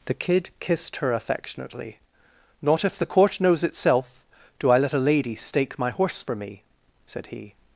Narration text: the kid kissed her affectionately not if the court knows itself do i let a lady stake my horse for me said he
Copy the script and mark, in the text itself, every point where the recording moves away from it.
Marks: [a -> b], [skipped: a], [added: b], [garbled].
the kid kissed her affectionately not if the court knows itself do i let a lady stake my horse for me said he